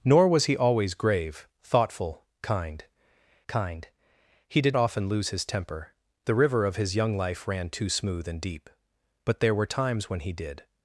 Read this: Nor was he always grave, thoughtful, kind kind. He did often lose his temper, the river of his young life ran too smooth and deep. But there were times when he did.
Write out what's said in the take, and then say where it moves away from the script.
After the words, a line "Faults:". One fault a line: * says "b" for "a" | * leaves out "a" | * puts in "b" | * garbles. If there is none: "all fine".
Nor was he always grave, thoughtful, kind kind. He did often lose his temper, the river of his young life ran too smooth and deep. But there were times when he did.
Faults:
all fine